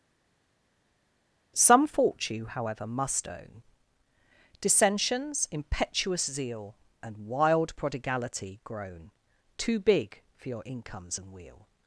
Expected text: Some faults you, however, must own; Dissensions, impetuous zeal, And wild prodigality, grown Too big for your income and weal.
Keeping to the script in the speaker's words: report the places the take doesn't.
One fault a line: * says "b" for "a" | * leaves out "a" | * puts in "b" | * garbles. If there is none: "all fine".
* says "fault" for "faults"
* says "incomes" for "income"